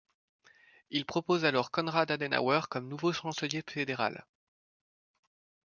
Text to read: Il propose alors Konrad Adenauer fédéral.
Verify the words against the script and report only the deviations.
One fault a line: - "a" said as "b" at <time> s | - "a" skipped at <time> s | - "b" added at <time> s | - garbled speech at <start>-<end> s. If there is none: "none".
- "comme nouveau chancelier" added at 2.7 s